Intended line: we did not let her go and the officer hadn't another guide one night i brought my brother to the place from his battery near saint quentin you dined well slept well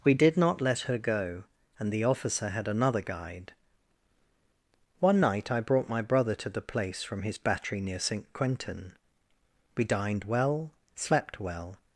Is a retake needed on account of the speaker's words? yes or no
yes